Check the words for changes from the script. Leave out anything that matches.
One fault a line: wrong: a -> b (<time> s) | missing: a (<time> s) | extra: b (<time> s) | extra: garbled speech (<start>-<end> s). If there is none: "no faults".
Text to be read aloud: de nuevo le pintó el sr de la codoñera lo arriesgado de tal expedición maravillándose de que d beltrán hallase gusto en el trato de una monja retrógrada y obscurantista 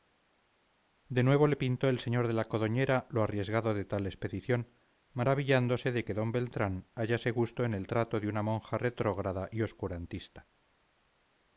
no faults